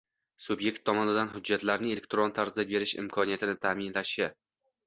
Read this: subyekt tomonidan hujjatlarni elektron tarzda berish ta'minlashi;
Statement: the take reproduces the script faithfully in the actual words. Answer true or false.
false